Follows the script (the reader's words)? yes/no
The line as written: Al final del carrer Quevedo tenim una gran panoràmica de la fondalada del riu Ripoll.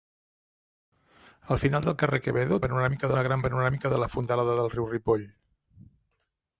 no